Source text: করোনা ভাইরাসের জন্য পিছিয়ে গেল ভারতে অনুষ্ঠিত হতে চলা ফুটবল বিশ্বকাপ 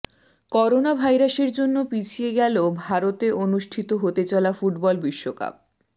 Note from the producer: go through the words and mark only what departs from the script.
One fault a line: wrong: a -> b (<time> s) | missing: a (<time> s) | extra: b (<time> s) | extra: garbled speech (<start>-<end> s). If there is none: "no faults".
no faults